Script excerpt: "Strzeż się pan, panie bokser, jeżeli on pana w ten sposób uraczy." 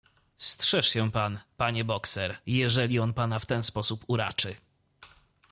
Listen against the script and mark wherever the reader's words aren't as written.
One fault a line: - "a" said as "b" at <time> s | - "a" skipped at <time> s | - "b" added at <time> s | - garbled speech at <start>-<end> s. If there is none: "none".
none